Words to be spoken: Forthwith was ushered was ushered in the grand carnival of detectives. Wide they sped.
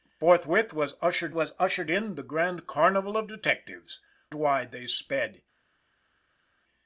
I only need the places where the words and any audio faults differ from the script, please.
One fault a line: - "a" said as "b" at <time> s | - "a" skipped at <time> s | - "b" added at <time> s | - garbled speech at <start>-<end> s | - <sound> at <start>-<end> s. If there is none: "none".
none